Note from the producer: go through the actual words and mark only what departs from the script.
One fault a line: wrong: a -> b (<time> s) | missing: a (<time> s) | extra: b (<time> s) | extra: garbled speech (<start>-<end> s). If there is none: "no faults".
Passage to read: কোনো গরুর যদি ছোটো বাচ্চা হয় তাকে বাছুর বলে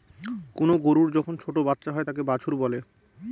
wrong: যদি -> যখন (1.1 s)